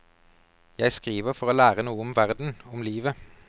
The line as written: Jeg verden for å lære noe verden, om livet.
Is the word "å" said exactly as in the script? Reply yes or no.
yes